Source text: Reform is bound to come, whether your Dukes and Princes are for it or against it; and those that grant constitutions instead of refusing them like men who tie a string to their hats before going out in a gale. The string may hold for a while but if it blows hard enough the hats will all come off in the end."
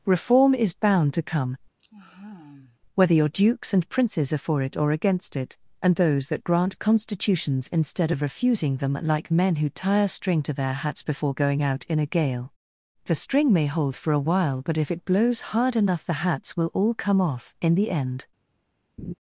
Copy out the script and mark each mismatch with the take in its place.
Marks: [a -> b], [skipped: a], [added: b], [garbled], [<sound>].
Reform is bound to come, [sigh] whether your Dukes and Princes are for it or against it; and those that grant constitutions instead of refusing them like men who tie a string to their hats before going out in a gale. The string may hold for a while but if it blows hard enough the hats will all come off in the end." [laugh]